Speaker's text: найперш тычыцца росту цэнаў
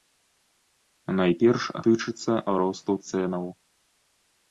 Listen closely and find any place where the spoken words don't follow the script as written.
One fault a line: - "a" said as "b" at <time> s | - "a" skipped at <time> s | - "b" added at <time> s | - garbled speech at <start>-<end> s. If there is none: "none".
none